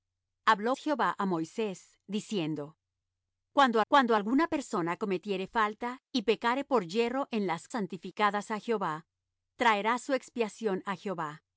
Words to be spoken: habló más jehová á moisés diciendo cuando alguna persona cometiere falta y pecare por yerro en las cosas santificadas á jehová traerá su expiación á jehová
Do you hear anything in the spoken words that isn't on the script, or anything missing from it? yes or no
yes